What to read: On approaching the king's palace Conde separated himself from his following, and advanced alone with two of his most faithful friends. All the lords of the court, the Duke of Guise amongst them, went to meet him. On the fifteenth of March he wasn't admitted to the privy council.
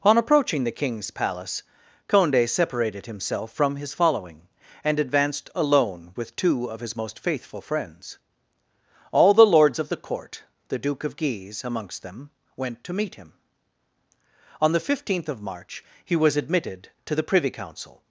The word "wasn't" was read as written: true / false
false